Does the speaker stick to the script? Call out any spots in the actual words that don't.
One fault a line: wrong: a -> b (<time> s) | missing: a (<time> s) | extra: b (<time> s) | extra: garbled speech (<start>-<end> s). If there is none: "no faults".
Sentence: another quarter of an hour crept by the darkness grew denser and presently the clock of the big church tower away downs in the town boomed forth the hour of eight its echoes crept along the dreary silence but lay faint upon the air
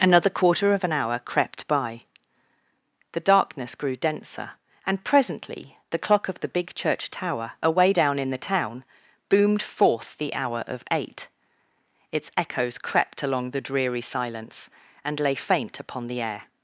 wrong: downs -> down (7.9 s)
wrong: but -> and (15.0 s)